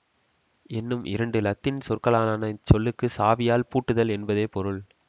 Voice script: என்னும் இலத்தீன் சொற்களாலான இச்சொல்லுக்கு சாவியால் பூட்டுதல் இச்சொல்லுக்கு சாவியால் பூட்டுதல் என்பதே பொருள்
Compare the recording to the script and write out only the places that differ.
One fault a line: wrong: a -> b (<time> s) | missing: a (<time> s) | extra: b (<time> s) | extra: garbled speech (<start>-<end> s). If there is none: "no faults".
extra: இரண்டு (1.0 s)
missing: இச்சொல்லுக்கு சாவியால் பூட்டுதல் (4.1 s)